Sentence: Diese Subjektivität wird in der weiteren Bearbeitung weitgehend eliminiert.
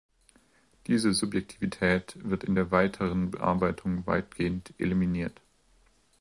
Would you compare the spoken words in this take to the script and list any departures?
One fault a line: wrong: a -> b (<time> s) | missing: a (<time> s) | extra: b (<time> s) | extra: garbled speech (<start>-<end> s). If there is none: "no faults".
no faults